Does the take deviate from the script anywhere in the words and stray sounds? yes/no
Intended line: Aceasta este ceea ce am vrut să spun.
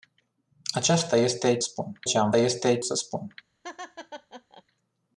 yes